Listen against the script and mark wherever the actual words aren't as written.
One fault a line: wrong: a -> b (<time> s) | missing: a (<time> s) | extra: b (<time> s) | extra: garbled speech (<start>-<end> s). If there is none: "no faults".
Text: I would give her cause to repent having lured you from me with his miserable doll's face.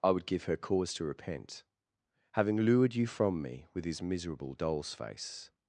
no faults